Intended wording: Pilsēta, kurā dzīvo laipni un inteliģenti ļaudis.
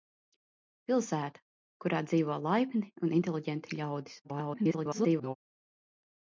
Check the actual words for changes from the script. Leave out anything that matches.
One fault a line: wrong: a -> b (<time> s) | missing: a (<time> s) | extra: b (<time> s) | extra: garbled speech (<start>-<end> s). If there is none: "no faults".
extra: garbled speech (4.2-5.4 s)